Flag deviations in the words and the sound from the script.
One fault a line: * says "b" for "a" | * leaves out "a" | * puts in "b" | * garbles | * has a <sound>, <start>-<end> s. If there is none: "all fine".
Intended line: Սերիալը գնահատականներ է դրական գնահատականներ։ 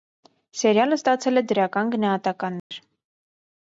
* says "ստացել" for "գնահատականներ"
* has a dropout, 2.6-2.7 s